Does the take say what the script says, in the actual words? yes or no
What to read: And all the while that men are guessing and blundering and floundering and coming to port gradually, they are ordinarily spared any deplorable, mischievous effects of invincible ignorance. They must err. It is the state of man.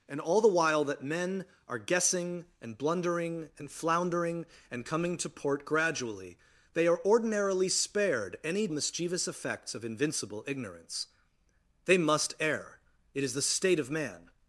no